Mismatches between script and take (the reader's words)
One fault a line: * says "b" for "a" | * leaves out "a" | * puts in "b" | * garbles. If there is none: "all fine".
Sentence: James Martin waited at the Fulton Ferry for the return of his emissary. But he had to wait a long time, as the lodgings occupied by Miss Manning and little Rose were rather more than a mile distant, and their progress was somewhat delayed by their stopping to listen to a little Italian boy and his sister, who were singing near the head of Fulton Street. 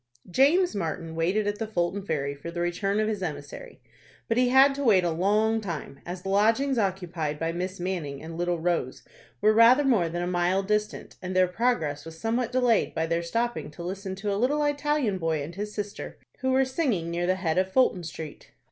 all fine